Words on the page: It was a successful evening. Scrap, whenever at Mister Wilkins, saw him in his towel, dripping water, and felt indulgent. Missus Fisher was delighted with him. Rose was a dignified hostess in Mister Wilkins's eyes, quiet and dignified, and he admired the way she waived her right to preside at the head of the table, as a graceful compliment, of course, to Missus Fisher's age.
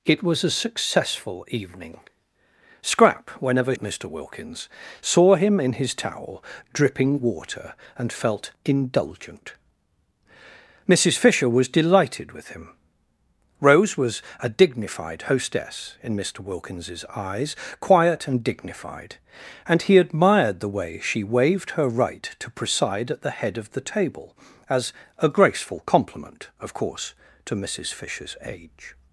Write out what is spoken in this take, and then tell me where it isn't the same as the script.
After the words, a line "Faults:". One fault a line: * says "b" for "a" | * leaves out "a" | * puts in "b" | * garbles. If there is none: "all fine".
It was a successful evening. Scrap, whenever at Mister Wilkins, saw him in his towel, dripping water, and felt indulgent. Missus Fisher was delighted with him. Rose was a dignified hostess in Mister Wilkins's eyes, quiet and dignified, and he admired the way she waived her right to preside at the head of the table, as a graceful compliment, of course, to Missus Fisher's age.
Faults:
all fine